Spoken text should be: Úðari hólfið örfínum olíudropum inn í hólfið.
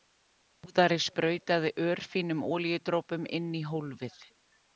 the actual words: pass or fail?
fail